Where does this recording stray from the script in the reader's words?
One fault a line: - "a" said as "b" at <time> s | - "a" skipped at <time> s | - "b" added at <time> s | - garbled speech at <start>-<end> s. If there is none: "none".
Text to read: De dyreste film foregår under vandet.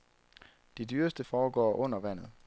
- "film" skipped at 1.2 s